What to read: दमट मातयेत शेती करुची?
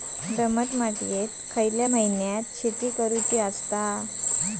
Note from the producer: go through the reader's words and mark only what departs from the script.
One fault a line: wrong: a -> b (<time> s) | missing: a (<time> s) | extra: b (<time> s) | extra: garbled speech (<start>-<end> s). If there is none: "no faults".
extra: खयल्या महिन्यात (1.5 s)